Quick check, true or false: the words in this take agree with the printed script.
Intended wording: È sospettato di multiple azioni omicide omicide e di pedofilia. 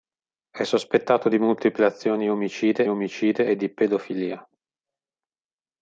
true